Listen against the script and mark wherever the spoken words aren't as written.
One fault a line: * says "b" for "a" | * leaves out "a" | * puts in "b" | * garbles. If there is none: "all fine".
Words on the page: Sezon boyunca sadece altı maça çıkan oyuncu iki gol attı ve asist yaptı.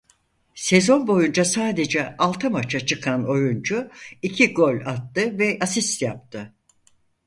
all fine